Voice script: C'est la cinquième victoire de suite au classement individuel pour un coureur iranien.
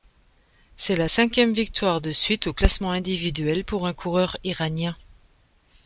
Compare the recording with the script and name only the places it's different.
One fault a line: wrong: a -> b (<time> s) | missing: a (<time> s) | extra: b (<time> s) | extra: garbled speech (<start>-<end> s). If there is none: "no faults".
no faults